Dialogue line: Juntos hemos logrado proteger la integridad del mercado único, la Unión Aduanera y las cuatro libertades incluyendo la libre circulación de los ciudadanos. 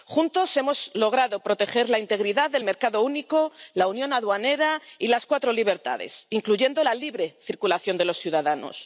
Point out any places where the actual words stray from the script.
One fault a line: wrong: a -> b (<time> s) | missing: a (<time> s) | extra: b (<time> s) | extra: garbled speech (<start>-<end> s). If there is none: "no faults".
no faults